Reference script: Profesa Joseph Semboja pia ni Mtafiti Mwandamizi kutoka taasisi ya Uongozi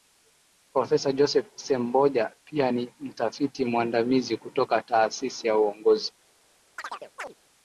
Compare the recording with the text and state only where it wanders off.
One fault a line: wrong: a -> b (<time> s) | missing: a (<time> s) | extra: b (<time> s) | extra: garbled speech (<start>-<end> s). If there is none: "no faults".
no faults